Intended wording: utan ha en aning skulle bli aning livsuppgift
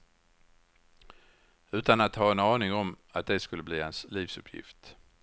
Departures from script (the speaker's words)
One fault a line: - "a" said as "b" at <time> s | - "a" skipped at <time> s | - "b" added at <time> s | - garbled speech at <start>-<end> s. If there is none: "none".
- "att" added at 2.0 s
- "om att det" added at 2.7 s
- "aning" said as "hans" at 3.8 s